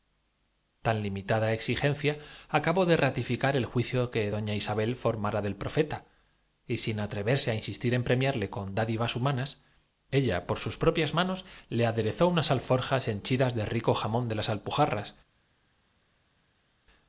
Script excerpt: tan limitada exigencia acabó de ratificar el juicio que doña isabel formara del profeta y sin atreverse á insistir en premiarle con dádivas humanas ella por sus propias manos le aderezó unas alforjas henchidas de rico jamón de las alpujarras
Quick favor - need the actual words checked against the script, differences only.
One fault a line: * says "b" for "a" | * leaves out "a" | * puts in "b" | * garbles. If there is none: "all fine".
all fine